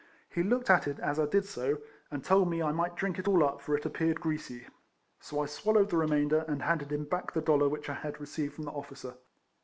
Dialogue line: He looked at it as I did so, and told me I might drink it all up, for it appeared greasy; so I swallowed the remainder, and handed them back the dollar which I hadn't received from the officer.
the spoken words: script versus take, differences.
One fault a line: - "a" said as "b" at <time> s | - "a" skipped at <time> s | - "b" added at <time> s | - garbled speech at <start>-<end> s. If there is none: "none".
- "them" said as "him" at 6.9 s
- "hadn't" said as "had" at 8.0 s